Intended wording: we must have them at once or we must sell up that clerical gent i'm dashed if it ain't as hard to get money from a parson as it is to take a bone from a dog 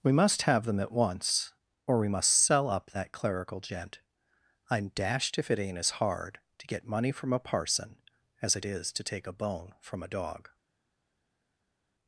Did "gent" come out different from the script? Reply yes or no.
no